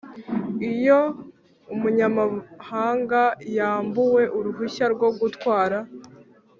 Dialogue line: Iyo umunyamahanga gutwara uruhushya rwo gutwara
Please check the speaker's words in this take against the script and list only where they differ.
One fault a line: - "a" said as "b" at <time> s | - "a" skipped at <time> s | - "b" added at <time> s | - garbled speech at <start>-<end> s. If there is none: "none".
- "gutwara" said as "yambuwe" at 3.6 s